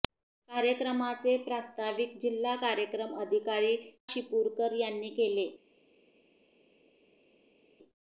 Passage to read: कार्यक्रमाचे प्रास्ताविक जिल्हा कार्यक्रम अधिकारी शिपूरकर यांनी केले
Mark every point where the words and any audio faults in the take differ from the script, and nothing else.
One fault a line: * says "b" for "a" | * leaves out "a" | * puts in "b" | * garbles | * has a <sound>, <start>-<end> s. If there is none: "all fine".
all fine